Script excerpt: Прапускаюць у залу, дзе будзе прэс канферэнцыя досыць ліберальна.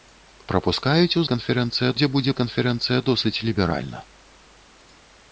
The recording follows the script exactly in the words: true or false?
false